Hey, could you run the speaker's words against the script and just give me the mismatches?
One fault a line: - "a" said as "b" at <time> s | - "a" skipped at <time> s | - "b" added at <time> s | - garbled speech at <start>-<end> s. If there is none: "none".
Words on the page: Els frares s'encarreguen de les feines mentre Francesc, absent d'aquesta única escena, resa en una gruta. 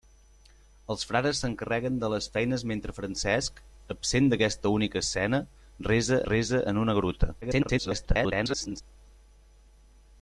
- "resa" added at 6.3 s
- garbled speech at 7.4-8.8 s